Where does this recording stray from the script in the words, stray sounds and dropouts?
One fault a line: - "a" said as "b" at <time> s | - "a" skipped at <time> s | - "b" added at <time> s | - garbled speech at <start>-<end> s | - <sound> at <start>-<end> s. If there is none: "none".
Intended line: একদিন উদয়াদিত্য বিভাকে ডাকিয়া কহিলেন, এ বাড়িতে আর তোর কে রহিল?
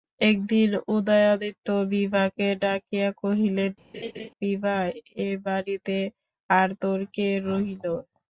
- laugh at 3.9-4.3 s
- "বিভা" added at 4.4 s